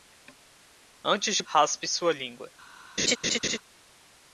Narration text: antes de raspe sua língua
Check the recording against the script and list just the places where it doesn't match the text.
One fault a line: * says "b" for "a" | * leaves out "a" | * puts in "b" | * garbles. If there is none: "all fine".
all fine